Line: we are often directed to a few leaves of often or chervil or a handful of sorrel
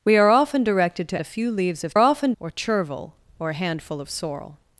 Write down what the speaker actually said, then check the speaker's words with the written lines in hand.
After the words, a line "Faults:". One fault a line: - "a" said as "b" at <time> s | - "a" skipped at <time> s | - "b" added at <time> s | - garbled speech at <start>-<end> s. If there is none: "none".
we are often directed to a few leaves of often or chervil or a handful of sorrel
Faults:
none